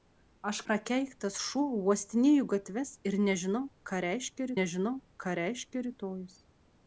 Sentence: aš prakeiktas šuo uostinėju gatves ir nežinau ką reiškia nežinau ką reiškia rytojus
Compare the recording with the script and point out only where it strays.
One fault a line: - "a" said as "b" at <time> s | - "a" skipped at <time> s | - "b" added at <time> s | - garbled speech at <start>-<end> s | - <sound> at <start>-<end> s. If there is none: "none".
none